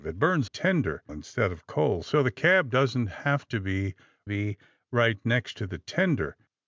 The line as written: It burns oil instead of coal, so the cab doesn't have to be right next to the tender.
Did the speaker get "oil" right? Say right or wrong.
wrong